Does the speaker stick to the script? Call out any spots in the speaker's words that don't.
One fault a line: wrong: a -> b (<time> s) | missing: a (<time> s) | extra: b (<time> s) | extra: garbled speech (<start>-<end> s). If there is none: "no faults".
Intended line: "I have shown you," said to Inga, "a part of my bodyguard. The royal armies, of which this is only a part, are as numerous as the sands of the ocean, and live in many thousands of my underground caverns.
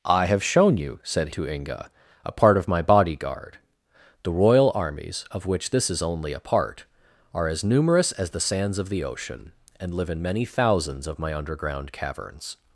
no faults